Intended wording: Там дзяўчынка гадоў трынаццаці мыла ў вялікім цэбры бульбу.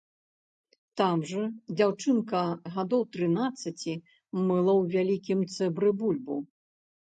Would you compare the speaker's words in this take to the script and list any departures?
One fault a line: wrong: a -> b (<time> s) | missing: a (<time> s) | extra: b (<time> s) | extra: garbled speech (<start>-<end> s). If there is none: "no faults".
extra: жа (1.3 s)